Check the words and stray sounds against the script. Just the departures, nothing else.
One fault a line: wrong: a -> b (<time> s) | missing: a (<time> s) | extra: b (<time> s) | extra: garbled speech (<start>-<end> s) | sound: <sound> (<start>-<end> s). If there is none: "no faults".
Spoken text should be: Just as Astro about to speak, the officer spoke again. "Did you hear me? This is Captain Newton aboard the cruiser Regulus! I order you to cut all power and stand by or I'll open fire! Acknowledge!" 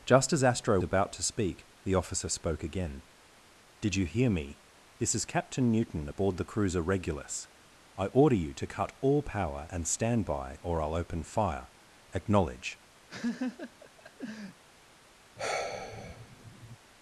sound: laugh (13.1-14.6 s)
sound: sigh (15.4-16.8 s)